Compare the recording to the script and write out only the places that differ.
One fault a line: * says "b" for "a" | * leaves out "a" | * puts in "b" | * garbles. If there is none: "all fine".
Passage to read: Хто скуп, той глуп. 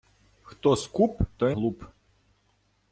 all fine